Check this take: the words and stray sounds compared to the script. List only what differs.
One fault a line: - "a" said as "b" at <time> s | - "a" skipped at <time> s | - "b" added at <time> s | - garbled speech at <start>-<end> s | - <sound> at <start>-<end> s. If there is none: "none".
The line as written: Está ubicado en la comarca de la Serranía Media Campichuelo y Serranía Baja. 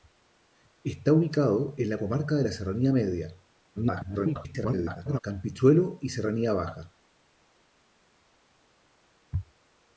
- garbled speech at 3.8-5.2 s